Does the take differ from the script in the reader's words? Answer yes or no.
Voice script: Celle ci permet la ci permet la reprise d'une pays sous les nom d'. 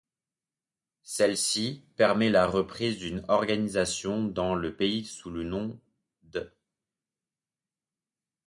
yes